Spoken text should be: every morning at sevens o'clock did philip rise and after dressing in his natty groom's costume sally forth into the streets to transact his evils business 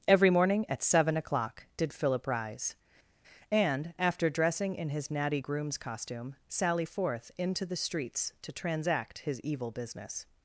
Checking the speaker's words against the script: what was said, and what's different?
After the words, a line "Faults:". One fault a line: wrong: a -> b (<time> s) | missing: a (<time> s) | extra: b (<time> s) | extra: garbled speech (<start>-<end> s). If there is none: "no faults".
every morning at seven o'clock did philip rise and after dressing in his natty groom's costume sally forth into the streets to transact his evil business
Faults:
wrong: sevens -> seven (0.8 s)
wrong: evils -> evil (9.4 s)